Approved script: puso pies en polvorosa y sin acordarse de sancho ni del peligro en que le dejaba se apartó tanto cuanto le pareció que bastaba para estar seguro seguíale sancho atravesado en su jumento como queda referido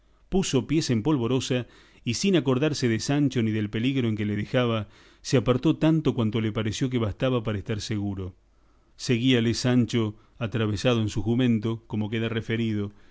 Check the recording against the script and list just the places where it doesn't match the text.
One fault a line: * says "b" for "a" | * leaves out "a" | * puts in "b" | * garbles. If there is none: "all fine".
all fine